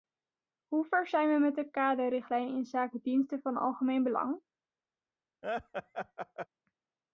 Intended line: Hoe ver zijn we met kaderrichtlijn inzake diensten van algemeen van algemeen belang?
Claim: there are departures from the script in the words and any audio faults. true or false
true